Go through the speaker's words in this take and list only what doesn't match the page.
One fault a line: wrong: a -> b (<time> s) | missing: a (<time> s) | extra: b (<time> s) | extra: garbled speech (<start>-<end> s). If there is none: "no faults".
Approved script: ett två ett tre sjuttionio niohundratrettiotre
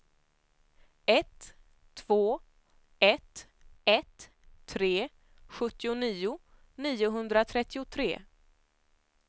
extra: ett (3.8 s)